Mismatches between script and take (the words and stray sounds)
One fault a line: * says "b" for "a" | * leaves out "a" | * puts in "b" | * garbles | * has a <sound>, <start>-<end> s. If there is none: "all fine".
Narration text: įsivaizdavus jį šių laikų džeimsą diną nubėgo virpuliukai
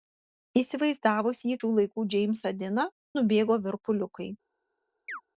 * has a chirp, 5.1-5.2 s